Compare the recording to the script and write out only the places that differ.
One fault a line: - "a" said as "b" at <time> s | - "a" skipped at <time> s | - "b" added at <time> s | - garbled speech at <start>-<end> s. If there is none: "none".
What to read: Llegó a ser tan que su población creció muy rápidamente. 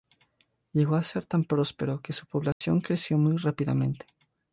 - "próspero" added at 1.4 s